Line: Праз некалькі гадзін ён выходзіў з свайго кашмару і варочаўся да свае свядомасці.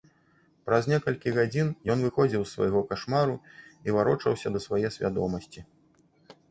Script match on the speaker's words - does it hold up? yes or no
yes